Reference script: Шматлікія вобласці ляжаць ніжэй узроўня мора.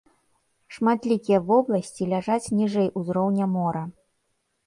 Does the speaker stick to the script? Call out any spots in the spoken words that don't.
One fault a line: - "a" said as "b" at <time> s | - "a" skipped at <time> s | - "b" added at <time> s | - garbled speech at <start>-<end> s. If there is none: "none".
none